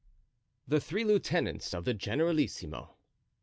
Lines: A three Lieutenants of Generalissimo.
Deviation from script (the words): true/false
true